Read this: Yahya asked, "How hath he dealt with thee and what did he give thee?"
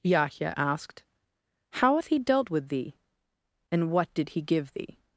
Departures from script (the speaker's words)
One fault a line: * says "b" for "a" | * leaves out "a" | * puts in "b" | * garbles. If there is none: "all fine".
all fine